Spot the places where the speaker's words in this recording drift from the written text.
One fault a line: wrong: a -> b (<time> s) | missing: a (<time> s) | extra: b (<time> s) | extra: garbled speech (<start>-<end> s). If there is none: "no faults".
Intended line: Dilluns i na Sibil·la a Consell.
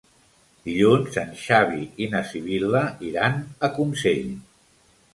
extra: en Xavi (1.2 s)
extra: iran (3.1 s)